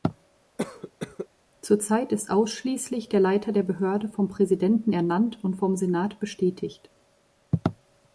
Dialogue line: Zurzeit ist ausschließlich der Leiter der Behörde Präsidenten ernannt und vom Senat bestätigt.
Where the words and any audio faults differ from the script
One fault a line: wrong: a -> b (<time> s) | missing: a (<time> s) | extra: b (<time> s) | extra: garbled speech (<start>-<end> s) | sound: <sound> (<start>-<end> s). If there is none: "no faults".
sound: cough (0.6-1.3 s)
extra: vom (4.1 s)